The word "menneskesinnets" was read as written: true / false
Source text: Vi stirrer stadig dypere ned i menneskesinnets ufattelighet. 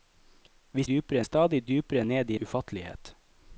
false